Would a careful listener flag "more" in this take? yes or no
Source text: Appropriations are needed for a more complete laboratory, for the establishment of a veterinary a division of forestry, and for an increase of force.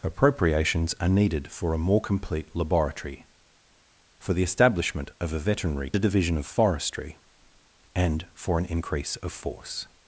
no